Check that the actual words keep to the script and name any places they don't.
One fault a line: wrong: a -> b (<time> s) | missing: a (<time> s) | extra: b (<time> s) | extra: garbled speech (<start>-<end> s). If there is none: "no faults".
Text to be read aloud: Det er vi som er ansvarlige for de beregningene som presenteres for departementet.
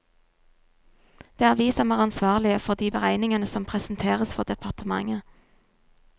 no faults